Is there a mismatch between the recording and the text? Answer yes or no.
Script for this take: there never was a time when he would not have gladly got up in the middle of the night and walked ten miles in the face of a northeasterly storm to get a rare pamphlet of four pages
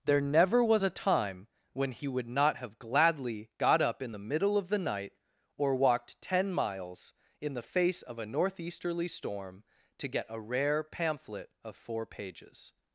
yes